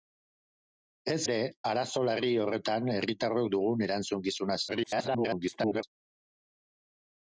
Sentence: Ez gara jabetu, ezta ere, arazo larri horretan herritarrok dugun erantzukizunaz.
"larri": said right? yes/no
yes